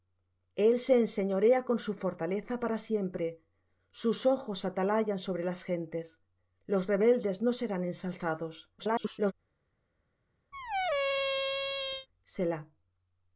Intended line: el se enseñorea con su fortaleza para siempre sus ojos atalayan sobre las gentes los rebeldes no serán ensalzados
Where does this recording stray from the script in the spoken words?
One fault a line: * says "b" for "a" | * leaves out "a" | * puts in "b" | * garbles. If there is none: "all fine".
* garbles